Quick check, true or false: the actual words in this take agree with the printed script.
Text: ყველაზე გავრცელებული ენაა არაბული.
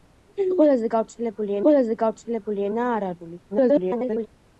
false